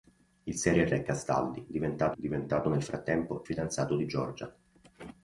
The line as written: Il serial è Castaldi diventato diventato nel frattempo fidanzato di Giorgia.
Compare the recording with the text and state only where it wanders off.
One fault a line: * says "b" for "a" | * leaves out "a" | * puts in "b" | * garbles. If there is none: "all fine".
all fine